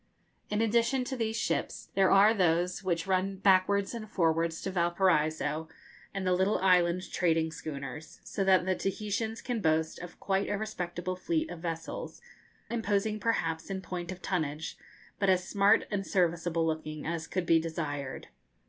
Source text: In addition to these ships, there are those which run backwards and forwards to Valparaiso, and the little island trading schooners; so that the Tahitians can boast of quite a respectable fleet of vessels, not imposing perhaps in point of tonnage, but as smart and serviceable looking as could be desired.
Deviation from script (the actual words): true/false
true